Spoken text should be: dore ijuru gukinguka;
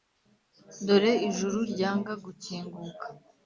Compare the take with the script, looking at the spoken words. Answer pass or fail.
fail